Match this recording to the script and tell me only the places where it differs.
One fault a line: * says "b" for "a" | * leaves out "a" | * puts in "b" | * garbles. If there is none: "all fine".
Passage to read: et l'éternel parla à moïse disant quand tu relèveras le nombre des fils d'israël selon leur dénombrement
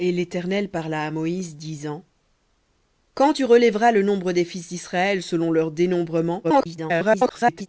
* garbles